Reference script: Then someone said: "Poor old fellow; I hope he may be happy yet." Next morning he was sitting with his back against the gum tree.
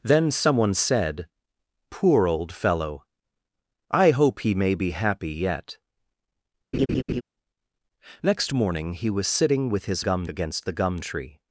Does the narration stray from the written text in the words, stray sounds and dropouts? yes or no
yes